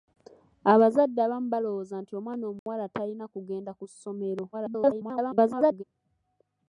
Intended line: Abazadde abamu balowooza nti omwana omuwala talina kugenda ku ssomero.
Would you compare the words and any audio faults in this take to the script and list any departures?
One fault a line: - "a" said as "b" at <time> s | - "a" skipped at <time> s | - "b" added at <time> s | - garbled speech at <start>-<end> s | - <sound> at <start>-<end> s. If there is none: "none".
- dropout at 2.6-2.7 s
- garbled speech at 4.5-5.8 s